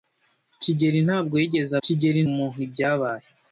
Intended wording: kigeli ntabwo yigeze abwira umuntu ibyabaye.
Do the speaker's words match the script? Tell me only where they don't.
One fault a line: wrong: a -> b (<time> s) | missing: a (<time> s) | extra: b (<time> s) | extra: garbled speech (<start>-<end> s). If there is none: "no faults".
wrong: abwira -> kigeli (1.8 s)